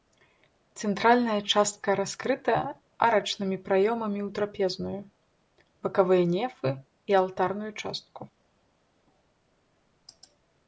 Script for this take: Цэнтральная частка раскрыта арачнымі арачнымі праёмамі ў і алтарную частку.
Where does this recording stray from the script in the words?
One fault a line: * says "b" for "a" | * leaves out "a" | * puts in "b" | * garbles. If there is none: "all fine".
* leaves out "арачнымі"
* puts in "трапезную бакавыя нефы"